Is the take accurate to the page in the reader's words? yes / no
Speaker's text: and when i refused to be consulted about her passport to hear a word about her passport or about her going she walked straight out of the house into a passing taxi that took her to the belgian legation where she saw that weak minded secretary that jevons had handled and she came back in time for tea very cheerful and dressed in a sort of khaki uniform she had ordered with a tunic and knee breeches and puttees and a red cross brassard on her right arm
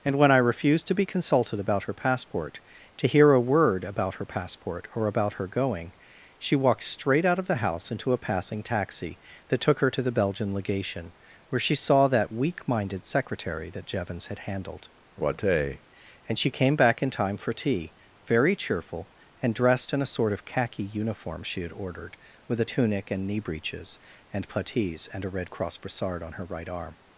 no